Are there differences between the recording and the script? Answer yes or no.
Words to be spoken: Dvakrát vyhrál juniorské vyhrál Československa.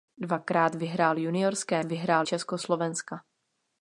no